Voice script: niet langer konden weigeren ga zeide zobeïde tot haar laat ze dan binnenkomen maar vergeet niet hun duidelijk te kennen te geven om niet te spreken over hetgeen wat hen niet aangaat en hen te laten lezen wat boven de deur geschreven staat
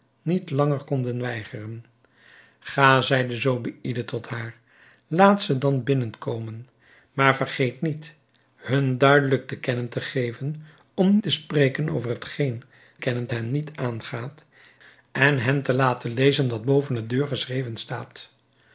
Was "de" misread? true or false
false